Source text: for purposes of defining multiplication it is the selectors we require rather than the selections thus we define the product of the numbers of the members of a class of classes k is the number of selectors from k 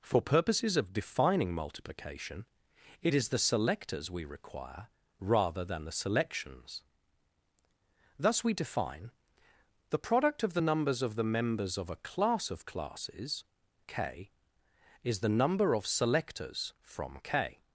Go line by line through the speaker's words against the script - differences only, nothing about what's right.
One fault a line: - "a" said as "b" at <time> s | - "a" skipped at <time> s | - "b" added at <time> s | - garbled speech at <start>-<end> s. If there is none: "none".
none